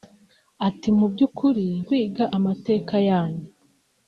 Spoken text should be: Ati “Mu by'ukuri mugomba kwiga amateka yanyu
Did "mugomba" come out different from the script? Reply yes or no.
yes